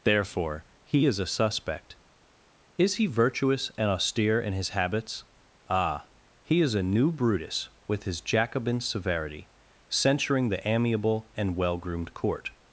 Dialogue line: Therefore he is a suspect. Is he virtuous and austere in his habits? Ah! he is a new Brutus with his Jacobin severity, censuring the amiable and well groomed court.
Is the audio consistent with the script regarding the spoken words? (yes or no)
yes